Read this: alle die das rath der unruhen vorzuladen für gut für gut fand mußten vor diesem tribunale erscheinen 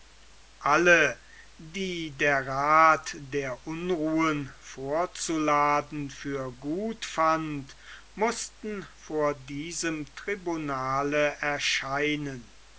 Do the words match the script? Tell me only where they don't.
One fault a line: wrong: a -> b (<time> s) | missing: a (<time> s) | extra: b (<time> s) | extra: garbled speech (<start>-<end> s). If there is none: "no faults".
wrong: das -> der (2.2 s)
missing: für gut (7.0 s)